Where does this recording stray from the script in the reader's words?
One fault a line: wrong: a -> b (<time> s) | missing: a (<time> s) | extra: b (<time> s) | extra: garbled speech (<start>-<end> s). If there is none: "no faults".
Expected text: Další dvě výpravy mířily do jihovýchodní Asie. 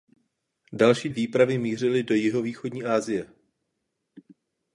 missing: dvě (1.1 s)